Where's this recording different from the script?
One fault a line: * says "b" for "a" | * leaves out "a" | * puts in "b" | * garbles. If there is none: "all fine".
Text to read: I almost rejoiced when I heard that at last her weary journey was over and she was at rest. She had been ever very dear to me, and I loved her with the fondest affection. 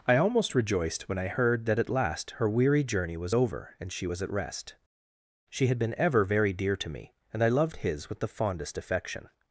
* says "his" for "her"